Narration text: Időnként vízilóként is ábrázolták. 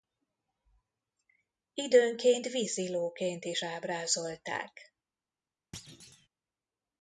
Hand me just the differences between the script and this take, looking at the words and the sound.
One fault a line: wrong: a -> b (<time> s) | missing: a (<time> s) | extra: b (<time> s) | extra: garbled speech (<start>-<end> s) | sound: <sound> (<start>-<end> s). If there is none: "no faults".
sound: thud (5.7-6.3 s)